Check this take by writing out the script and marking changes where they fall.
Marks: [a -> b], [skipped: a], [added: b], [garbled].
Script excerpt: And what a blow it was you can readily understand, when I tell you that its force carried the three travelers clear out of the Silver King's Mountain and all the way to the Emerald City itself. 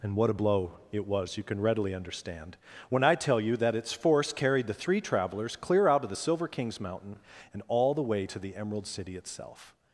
And what a blow it was you can readily understand, when I tell you that its force carried the three travelers clear out of the Silver King's Mountain and all the way to the Emerald City itself.